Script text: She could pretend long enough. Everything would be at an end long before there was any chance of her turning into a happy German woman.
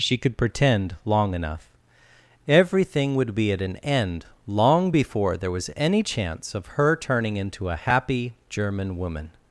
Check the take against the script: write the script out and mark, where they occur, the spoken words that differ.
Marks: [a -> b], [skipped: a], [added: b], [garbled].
She could pretend long enough. Everything would be at an end long before there was any chance of her turning into a happy German woman.